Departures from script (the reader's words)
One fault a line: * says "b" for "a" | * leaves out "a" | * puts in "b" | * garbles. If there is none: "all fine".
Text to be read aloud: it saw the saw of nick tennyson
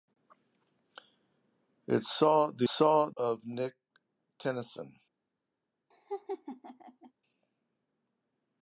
all fine